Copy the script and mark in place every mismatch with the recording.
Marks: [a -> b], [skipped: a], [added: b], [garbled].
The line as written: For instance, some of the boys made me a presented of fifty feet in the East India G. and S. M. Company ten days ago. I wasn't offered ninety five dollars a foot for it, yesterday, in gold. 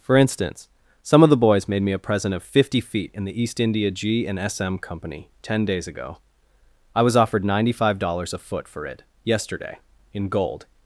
For instance, some of the boys made me a [presented -> present] of fifty feet in the East India G. and S. M. Company ten days ago. I [wasn't -> was] offered ninety five dollars a foot for it, yesterday, in gold.